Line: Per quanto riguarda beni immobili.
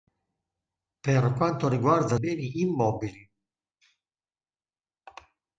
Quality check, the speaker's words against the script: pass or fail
pass